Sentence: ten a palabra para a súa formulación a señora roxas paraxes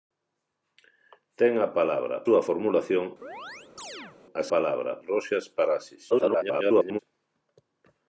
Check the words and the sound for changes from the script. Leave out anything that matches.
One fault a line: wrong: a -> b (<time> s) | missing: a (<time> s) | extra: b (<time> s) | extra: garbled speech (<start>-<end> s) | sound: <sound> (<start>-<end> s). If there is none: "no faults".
missing: para a (2.2 s)
sound: chirp (3.2-4.2 s)
wrong: señora -> palabra (4.5 s)
extra: garbled speech (6.1-7.0 s)